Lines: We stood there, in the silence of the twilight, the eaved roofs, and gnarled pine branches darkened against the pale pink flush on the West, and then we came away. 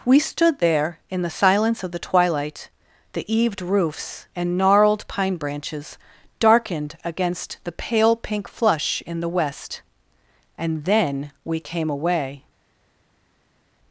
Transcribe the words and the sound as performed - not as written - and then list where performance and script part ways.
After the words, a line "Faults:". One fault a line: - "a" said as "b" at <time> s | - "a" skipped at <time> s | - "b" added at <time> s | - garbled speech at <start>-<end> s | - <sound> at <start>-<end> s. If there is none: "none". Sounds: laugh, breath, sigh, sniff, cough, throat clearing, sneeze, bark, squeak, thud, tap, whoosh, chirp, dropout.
We stood there, in the silence of the twilight, the eaved roofs, and gnarled pine branches darkened against the pale pink flush in the West, and then we came away.
Faults:
- "on" said as "in" at 9.1 s